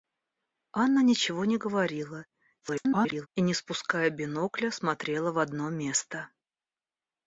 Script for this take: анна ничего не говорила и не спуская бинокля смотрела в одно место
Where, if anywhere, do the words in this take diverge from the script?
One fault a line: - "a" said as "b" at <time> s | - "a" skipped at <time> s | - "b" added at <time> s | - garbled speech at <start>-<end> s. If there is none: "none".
- garbled speech at 2.6-3.3 s